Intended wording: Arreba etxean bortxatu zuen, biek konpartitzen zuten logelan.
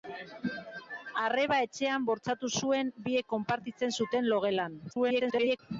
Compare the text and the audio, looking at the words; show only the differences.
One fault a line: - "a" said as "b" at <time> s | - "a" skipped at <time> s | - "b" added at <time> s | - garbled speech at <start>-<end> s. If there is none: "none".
- garbled speech at 4.9-5.6 s